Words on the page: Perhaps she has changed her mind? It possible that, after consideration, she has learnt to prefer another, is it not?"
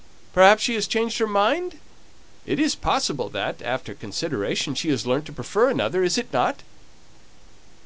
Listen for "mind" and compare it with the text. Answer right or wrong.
right